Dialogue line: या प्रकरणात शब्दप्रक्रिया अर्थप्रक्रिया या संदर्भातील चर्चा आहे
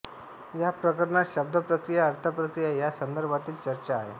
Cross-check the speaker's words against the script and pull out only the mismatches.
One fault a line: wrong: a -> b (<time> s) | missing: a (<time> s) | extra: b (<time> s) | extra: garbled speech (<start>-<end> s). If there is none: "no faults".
no faults